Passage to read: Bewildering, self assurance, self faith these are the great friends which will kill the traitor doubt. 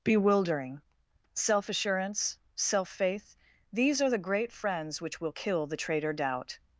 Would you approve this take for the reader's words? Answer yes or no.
yes